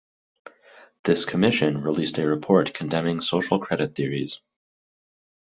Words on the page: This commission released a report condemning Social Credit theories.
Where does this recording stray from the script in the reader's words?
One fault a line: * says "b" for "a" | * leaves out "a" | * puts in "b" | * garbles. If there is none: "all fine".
all fine